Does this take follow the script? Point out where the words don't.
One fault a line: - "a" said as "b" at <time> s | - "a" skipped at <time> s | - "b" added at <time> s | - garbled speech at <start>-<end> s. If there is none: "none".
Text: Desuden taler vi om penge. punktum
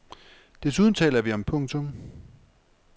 - "penge" skipped at 1.4 s